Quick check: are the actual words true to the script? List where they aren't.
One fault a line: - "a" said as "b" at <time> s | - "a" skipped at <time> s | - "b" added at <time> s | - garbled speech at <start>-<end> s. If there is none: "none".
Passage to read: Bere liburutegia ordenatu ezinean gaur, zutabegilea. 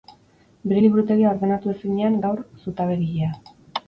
none